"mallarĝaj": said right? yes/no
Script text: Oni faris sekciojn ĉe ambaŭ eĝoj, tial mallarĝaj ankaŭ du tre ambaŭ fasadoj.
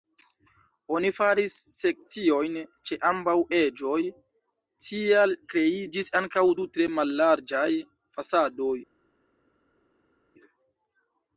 no